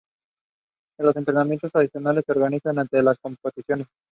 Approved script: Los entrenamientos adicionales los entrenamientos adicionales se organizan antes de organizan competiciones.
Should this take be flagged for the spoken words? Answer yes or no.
yes